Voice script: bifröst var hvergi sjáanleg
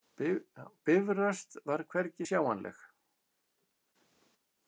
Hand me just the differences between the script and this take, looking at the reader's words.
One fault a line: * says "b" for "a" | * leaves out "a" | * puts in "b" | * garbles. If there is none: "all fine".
all fine